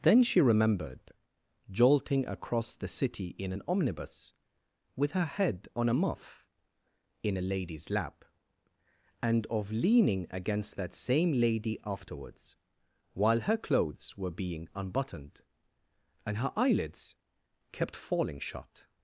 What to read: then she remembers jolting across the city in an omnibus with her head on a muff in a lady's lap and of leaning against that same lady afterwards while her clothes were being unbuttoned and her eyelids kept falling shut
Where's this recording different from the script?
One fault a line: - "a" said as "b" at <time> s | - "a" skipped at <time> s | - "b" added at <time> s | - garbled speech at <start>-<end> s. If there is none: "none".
- "remembers" said as "remembered" at 0.4 s